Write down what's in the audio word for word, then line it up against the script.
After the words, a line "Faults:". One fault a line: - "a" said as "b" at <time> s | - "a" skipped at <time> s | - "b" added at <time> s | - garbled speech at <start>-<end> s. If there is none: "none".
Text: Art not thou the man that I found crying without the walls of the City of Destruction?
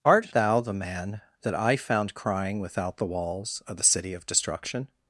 Art thou the man that I found crying without the walls of the City of Destruction?
Faults:
- "not" skipped at 0.3 s